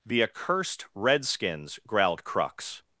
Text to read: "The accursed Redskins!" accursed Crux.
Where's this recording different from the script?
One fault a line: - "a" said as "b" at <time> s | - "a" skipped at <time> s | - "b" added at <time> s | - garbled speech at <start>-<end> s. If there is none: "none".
- "accursed" said as "growled" at 1.9 s